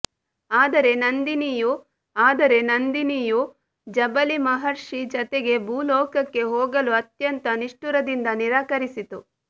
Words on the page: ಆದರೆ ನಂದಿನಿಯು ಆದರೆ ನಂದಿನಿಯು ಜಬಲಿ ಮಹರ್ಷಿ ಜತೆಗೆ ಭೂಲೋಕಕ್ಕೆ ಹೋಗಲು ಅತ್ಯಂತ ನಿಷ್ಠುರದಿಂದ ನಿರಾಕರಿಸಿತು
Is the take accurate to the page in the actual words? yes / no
yes